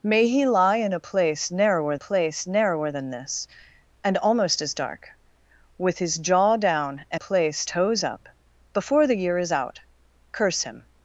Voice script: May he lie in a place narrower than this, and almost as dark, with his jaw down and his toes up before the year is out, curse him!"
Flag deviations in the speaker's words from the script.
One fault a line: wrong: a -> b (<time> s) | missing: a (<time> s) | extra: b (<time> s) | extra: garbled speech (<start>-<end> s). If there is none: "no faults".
extra: place narrower (2.0 s)
wrong: his -> place (7.2 s)